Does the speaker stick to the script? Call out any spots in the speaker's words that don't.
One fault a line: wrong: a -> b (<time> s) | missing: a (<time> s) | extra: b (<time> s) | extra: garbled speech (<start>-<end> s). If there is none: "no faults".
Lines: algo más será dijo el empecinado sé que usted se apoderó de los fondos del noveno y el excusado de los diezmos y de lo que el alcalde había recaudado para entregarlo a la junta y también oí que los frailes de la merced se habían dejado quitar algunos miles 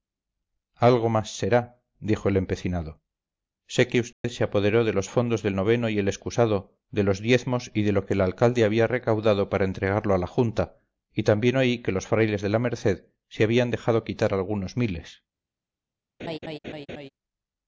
no faults